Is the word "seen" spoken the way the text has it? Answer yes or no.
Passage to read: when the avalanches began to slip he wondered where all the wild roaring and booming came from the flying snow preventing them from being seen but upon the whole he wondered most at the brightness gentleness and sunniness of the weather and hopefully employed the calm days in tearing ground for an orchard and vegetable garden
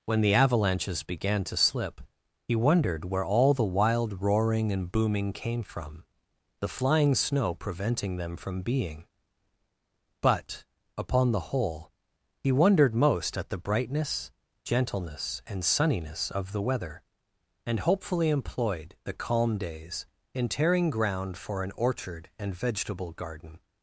no